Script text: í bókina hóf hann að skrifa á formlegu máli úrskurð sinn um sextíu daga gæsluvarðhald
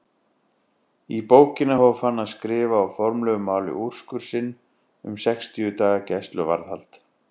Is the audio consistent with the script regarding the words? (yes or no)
yes